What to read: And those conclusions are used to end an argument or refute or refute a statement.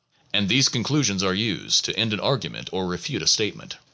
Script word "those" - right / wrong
wrong